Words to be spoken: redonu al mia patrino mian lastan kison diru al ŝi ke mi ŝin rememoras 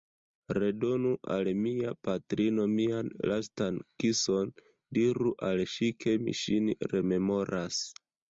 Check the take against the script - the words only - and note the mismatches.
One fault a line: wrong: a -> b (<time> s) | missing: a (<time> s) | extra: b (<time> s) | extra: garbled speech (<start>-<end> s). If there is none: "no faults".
no faults